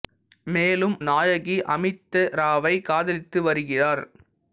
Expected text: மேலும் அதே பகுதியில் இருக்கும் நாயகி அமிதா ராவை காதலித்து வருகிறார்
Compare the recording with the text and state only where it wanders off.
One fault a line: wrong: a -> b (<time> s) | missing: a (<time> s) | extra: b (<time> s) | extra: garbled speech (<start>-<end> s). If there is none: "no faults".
missing: அதே பகுதியில் இருக்கும் (0.9 s)